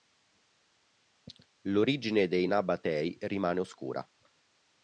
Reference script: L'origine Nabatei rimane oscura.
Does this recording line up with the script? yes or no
no